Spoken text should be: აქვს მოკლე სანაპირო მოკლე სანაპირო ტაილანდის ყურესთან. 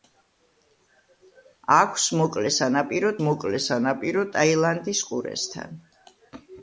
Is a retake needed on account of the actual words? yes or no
no